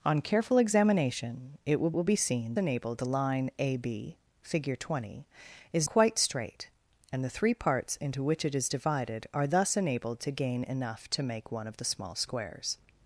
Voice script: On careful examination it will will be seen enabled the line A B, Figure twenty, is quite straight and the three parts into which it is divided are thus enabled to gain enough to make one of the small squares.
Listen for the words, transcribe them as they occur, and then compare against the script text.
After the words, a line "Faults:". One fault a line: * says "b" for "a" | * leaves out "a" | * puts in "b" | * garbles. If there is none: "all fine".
On careful examination it will will be seen enabled the line A B, Figure twenty, is quite straight and the three parts into which it is divided are thus enabled to gain enough to make one of the small squares.
Faults:
all fine